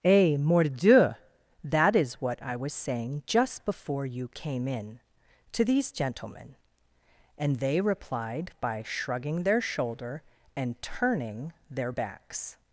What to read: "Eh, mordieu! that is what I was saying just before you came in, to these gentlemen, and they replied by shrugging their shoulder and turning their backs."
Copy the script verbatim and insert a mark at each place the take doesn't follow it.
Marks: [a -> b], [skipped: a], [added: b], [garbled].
"Eh, mordieu! that is what I was saying just before you came in, to these gentlemen, and they replied by shrugging their shoulder and turning their backs."